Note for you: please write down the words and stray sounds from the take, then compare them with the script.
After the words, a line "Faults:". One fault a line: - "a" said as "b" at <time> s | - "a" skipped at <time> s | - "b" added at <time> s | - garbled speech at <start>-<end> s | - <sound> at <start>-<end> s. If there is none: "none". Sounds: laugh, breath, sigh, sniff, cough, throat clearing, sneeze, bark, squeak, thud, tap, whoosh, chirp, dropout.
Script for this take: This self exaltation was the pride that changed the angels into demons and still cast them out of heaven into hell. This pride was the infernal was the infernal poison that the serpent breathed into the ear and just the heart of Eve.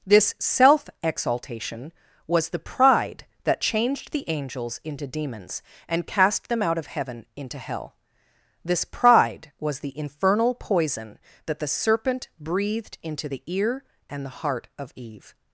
This self exaltation was the pride that changed the angels into demons and cast them out of heaven into hell. This pride was the infernal poison that the serpent breathed into the ear and the heart of Eve.
Faults:
- "still" skipped at 6.1 s
- "was the infernal" skipped at 10.6 s
- "just" skipped at 14.2 s